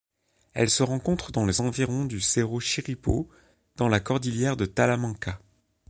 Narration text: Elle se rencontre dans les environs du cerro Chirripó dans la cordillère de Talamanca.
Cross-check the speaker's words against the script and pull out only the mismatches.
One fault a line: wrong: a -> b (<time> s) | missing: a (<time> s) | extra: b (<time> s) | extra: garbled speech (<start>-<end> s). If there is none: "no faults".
no faults